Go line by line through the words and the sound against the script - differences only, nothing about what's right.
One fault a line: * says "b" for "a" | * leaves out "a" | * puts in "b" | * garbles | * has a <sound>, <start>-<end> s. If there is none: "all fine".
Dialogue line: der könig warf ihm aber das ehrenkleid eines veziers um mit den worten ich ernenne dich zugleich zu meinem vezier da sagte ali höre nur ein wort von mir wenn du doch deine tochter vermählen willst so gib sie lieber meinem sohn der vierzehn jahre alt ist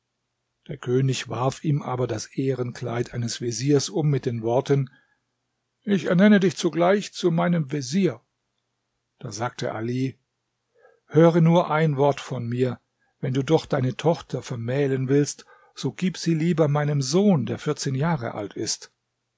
all fine